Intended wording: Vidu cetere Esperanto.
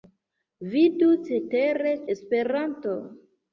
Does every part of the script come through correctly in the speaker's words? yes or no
yes